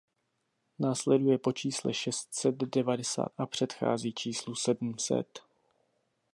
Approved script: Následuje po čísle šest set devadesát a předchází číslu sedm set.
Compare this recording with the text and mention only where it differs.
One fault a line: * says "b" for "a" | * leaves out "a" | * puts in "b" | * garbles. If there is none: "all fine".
all fine